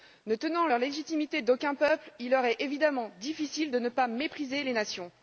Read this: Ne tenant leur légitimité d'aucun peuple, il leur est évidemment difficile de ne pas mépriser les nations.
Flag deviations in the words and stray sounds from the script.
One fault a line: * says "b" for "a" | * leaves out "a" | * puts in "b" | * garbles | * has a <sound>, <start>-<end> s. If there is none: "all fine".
all fine